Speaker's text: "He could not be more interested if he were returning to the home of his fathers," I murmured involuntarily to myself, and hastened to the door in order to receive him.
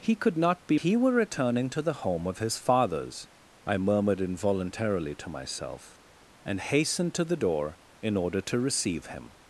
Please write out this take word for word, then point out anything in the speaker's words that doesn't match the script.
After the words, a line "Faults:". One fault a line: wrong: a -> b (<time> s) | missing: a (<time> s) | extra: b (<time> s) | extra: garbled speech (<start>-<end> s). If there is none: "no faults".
"He could not be he were returning to the home of his fathers," I murmured involuntarily to myself, and hastened to the door in order to receive him.
Faults:
missing: more interested if (0.8 s)